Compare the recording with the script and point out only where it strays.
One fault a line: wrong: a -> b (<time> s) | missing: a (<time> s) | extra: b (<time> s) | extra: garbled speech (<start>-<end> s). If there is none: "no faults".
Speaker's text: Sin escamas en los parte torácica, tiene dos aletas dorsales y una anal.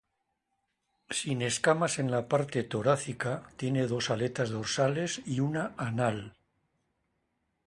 wrong: los -> la (2.1 s)